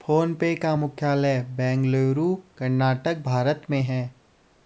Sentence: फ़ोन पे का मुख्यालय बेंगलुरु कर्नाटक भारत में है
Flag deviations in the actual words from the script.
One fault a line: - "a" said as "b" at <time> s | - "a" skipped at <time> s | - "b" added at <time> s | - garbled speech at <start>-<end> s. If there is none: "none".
none